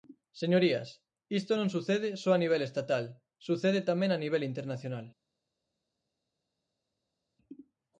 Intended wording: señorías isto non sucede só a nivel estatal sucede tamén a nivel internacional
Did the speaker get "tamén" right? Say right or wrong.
right